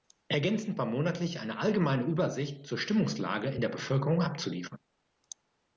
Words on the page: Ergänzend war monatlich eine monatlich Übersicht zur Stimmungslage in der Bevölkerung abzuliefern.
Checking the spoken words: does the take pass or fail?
fail